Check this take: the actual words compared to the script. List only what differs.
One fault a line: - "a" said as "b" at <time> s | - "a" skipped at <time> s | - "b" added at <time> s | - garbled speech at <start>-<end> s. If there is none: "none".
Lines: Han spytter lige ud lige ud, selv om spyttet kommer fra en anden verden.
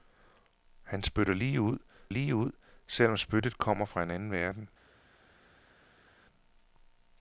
none